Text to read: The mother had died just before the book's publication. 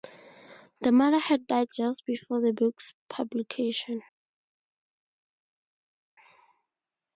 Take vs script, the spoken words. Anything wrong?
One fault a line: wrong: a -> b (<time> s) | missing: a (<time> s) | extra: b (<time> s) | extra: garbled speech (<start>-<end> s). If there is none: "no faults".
no faults